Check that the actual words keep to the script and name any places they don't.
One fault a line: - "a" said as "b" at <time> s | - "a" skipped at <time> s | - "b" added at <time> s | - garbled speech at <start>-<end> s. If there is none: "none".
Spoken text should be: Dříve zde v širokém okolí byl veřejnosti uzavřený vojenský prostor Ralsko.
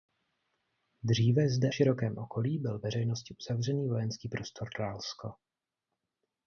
none